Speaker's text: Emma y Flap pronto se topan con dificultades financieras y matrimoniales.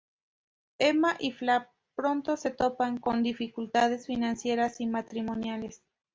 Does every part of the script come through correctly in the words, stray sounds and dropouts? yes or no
yes